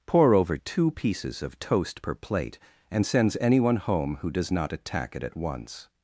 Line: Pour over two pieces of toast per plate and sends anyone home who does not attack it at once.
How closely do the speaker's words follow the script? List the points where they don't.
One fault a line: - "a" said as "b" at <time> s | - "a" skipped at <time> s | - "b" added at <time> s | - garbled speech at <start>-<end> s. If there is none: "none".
none